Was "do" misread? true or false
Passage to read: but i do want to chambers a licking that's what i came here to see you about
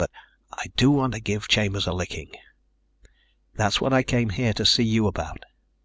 false